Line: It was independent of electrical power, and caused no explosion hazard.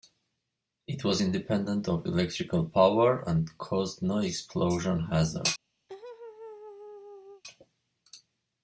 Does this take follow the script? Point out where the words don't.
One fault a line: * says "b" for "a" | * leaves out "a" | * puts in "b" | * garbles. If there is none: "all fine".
all fine